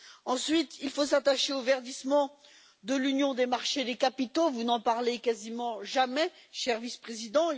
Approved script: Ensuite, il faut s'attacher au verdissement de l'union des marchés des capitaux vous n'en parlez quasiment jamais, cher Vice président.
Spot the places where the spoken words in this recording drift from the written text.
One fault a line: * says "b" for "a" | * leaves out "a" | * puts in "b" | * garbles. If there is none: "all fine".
all fine